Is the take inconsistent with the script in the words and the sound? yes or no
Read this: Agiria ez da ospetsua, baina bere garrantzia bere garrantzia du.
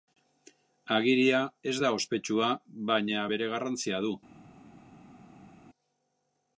yes